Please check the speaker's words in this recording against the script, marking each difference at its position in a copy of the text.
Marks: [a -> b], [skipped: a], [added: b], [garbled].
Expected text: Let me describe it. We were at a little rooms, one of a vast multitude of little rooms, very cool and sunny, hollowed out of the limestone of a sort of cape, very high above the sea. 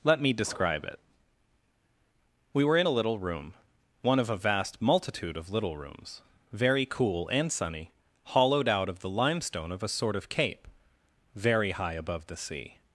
Let me describe it. We were [at -> in] a little [rooms, -> room] one of a vast multitude of little rooms, very cool and sunny, hollowed out of the limestone of a sort of cape, very high above the sea.